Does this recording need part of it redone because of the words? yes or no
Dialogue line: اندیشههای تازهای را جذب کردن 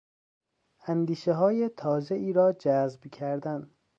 no